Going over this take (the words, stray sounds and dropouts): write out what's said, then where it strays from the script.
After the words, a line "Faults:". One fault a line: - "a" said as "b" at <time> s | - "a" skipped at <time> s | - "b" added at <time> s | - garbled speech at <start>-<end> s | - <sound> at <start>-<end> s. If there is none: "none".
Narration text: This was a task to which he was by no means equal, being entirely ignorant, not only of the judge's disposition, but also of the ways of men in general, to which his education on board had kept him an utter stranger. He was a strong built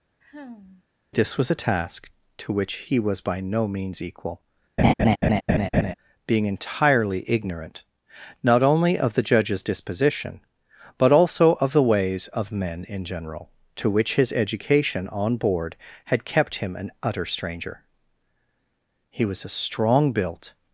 This was a task to which he was by no means equal, being entirely ignorant, not only of the judge's disposition, but also of the ways of men in general, to which his education on board had kept him an utter stranger. He was a strong built
Faults:
- sigh at 0.2-0.8 s
- laugh at 4.8-5.9 s